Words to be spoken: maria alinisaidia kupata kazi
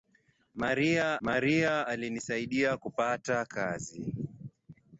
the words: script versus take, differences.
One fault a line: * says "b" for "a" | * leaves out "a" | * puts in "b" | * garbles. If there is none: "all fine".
* puts in "maria"